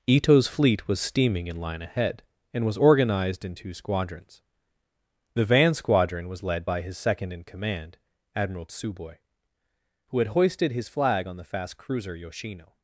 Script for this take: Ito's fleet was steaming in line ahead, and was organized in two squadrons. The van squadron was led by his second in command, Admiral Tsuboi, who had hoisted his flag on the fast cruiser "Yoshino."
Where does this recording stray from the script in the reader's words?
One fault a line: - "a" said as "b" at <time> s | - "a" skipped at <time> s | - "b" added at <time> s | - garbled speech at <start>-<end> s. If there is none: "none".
none